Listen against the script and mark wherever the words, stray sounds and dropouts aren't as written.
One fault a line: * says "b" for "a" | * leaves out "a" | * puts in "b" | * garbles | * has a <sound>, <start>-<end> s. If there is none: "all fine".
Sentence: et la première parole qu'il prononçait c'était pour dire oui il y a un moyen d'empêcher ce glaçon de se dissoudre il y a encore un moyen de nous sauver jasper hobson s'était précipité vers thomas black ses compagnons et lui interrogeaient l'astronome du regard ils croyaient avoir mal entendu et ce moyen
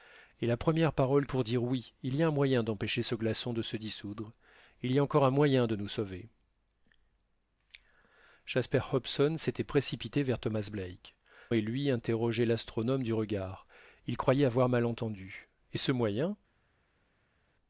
* leaves out "qu'il prononçait c'était"
* leaves out "ses compagnons"